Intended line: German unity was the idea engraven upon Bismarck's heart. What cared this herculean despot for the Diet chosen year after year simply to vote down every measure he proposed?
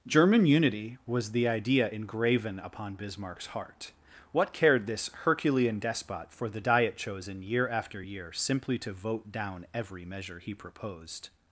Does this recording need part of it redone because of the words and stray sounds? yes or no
no